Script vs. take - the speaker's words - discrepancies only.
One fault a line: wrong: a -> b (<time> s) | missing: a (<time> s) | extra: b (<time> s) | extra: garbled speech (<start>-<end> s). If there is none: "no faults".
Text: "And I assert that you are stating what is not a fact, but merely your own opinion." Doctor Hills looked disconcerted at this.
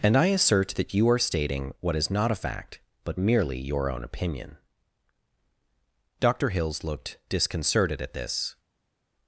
no faults